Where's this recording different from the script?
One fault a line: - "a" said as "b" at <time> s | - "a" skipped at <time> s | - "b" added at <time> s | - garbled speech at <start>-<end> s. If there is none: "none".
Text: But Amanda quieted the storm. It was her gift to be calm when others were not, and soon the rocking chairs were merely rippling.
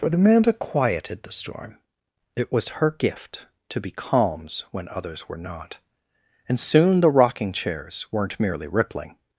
- "calm" said as "calms" at 3.9 s
- "were" said as "weren't" at 8.1 s